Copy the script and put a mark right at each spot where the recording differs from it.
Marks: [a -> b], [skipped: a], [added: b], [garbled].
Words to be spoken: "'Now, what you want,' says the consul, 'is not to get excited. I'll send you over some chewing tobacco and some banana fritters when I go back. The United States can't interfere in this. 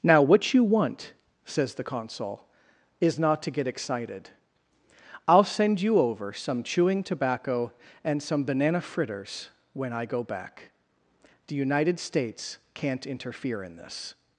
"'Now, what you want,' says the consul, 'is not to get excited. I'll send you over some chewing tobacco and some banana fritters when I go back. The United States can't interfere in this.